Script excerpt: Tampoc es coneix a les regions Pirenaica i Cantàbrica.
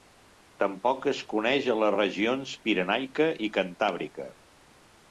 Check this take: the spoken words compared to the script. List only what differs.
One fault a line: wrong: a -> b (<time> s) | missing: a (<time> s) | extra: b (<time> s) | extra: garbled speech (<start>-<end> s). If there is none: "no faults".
no faults